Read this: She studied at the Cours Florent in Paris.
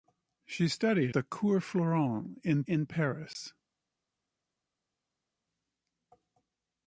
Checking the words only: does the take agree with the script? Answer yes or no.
no